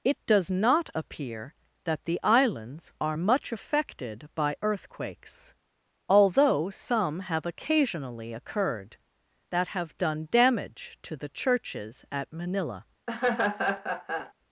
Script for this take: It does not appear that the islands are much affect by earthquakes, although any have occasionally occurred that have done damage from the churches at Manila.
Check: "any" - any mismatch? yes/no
yes